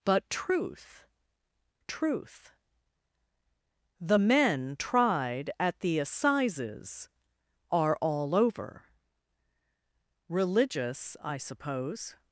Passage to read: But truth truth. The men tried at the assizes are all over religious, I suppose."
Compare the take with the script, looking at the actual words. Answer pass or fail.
pass